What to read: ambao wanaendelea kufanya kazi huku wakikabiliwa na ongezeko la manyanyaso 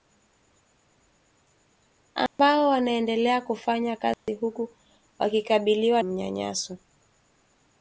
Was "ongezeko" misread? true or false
true